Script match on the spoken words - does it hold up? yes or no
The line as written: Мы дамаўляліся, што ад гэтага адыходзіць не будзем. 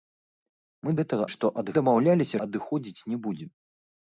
no